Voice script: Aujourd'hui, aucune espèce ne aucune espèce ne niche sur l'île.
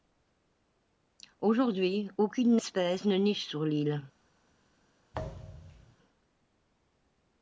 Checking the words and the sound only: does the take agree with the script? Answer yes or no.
no